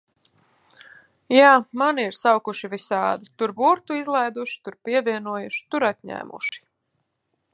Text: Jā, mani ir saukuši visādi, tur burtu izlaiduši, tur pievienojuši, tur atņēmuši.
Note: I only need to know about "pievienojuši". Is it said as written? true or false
true